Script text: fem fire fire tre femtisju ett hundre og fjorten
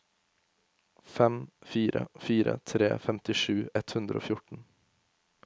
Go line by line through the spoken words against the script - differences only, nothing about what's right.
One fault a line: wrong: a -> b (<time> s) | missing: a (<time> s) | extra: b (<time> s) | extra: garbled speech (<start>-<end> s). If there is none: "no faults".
no faults